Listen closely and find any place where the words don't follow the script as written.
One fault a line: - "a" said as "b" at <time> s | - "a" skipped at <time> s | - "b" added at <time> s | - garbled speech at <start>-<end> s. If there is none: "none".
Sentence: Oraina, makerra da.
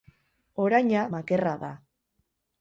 none